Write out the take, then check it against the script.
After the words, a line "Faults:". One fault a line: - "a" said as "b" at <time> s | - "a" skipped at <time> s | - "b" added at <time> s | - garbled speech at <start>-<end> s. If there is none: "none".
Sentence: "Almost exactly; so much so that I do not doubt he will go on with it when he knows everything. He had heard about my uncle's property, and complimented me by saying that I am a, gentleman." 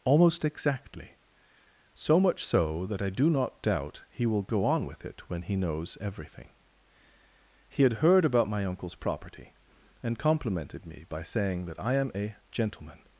"Almost exactly; so much so that I do not doubt he will go on with it when he knows everything. He had heard about my uncle's property, and complimented me by saying that I am a, gentleman."
Faults:
none